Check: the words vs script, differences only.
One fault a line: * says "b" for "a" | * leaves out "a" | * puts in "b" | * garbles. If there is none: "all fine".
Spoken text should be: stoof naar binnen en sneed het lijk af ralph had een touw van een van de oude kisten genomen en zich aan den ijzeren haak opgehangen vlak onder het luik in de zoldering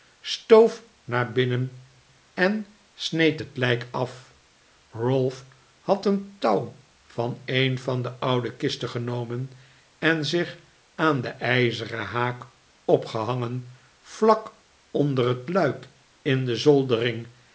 all fine